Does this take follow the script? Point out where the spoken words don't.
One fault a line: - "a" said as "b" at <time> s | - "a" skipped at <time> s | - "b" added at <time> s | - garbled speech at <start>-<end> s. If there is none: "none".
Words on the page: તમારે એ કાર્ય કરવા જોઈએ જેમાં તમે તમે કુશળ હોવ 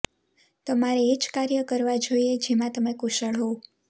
- "જ" added at 1.2 s
- "તમે" skipped at 3.0 s